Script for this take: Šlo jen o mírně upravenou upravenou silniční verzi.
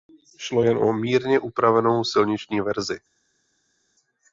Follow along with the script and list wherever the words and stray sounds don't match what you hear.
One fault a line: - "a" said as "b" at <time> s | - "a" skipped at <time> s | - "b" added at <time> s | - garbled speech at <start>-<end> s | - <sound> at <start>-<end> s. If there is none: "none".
- "upravenou" skipped at 2.0 s